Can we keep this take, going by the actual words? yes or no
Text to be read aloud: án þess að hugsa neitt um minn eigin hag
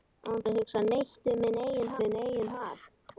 no